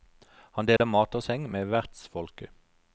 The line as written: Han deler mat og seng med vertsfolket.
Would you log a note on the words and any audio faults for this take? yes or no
yes